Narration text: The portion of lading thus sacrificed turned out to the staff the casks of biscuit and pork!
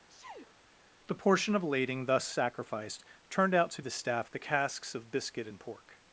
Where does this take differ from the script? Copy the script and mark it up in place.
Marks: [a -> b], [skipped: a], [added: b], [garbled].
The portion of lading thus sacrificed turned out to the staff the casks of biscuit and pork!